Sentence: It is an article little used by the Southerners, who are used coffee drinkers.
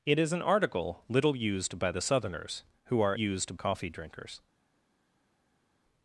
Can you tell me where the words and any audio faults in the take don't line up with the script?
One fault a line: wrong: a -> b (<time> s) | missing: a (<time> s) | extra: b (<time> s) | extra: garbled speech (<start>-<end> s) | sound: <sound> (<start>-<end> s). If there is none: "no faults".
no faults